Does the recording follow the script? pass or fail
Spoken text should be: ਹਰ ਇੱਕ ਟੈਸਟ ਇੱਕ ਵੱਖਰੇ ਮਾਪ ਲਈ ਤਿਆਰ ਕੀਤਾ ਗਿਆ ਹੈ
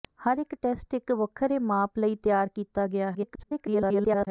fail